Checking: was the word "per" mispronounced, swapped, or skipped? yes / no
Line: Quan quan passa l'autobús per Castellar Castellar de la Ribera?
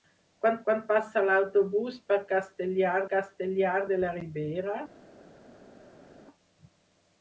no